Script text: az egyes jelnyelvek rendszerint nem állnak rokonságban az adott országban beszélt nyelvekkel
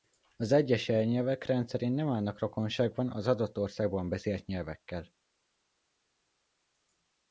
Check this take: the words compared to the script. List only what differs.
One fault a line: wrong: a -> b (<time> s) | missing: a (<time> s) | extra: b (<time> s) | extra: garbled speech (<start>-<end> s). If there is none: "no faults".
no faults